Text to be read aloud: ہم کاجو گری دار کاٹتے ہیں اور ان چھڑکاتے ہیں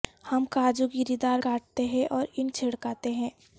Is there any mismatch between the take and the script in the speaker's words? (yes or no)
no